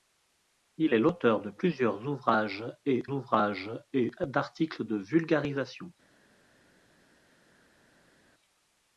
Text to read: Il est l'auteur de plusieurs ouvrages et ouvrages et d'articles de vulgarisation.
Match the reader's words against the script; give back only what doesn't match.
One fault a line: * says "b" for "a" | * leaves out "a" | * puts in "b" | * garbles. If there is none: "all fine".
all fine